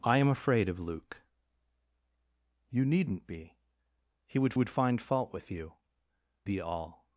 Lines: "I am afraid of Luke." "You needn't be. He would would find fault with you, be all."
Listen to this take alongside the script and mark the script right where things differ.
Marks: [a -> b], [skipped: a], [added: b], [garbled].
"I am afraid of Luke." "You needn't be. He would would find fault with you, be all."